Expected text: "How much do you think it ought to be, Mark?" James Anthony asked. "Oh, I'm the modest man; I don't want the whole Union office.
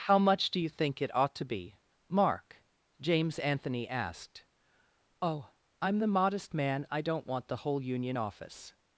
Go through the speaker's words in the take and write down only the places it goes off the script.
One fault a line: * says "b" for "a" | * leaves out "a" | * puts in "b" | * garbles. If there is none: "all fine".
all fine